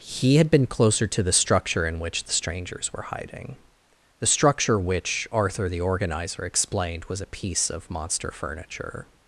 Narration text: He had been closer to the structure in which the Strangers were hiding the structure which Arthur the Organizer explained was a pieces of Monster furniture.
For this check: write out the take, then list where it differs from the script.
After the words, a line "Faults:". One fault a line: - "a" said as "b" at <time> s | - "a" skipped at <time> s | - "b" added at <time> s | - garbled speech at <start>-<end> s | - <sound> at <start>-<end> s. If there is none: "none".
He had been closer to the structure in which the Strangers were hiding the structure which Arthur the Organizer explained was a piece of Monster furniture.
Faults:
- "pieces" said as "piece" at 7.2 s